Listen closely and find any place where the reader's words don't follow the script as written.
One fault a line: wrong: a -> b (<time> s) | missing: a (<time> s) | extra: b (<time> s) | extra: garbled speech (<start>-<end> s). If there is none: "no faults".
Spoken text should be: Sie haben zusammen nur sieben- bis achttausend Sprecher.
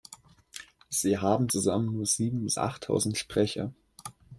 no faults